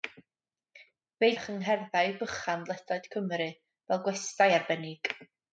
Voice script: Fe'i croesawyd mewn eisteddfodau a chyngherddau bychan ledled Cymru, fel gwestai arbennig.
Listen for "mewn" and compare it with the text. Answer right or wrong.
wrong